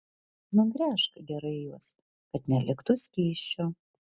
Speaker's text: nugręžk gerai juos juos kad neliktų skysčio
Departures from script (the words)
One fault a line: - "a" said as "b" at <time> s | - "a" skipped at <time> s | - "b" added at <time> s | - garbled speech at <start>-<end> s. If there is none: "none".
- "juos" skipped at 1.9 s